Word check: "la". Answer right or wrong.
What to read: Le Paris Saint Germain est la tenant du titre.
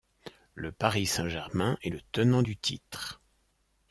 wrong